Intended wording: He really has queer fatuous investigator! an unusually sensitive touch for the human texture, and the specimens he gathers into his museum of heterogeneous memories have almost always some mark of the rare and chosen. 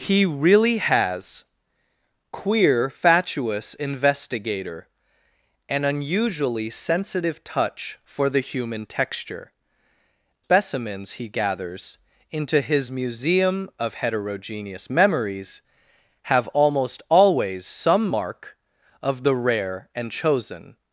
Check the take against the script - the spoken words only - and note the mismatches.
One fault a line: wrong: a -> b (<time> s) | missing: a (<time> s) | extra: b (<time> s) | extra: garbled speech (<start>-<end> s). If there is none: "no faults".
missing: and the (9.5 s)